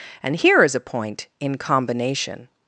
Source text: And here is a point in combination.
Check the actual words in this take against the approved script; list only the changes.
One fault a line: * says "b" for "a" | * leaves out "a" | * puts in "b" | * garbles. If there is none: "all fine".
all fine